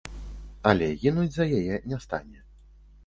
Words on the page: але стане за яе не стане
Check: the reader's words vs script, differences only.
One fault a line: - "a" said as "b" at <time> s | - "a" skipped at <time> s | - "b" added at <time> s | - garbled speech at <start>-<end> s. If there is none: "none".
- "стане" said as "гінуць" at 1.0 s